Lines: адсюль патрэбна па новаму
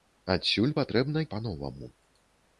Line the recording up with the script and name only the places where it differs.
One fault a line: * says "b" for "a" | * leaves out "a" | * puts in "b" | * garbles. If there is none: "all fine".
all fine